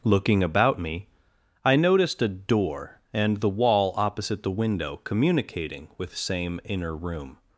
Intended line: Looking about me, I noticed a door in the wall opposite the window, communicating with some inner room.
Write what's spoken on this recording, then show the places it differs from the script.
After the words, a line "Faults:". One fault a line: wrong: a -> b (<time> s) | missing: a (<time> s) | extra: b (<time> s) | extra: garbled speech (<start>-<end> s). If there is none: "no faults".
Looking about me, I noticed a door and the wall opposite the window, communicating with same inner room.
Faults:
wrong: in -> and (3.1 s)
wrong: some -> same (6.1 s)